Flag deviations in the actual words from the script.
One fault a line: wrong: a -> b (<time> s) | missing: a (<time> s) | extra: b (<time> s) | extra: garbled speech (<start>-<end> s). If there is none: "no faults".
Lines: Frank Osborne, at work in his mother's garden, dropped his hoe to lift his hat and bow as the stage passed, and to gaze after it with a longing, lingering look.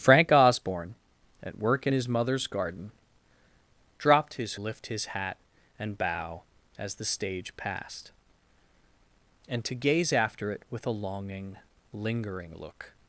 missing: hoe to (4.6 s)